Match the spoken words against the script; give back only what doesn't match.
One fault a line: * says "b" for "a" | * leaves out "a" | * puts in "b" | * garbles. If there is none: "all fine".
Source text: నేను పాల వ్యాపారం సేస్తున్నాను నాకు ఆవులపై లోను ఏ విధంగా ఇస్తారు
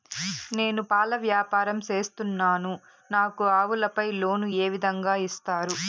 all fine